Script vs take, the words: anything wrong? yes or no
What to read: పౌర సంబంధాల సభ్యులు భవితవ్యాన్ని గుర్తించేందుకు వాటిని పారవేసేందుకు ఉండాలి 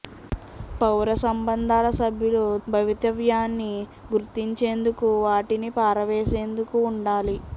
no